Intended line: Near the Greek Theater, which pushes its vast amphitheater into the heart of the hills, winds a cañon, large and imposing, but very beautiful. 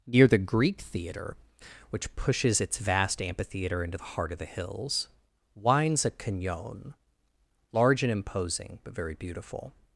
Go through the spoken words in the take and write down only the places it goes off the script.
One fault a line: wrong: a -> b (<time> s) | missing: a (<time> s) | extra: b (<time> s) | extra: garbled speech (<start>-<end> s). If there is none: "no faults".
no faults